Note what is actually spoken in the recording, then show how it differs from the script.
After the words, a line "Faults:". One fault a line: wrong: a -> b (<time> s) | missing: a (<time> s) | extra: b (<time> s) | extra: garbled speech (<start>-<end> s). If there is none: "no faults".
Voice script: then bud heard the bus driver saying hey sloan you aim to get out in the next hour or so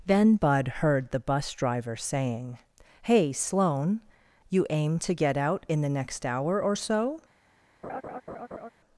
then bud heard the bus driver saying hey sloan you aim to get out in the next hour or so
Faults:
no faults